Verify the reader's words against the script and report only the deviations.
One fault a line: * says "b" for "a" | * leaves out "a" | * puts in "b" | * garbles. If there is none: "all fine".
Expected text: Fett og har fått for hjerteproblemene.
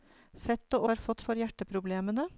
all fine